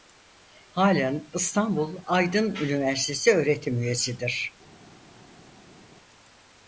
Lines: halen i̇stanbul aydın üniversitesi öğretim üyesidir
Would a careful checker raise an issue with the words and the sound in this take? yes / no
no